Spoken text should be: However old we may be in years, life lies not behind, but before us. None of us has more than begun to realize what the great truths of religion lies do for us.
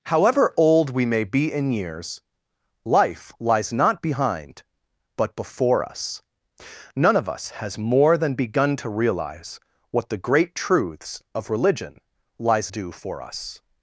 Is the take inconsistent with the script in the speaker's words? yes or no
no